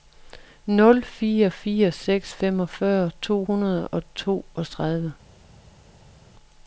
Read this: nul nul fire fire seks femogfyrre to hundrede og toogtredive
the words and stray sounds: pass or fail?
fail